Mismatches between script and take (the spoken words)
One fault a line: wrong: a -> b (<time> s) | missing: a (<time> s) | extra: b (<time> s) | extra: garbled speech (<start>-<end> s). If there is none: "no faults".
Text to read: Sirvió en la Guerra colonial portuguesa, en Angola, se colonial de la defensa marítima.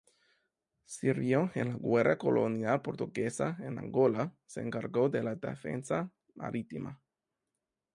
wrong: colonial -> encargó (4.6 s)